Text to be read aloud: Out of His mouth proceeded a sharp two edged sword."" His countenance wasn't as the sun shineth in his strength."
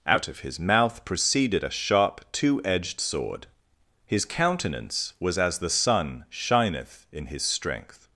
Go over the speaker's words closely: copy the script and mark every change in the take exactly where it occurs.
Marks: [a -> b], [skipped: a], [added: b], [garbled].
Out of His mouth proceeded a sharp two edged sword."" His countenance [wasn't -> was] as the sun shineth in his strength."